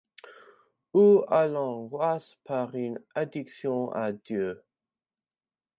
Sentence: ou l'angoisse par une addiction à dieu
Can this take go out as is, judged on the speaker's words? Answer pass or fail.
fail